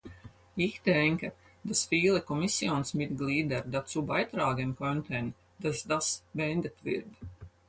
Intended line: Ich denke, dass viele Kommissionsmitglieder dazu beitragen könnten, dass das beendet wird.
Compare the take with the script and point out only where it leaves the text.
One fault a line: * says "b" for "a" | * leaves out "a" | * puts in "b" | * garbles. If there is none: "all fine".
all fine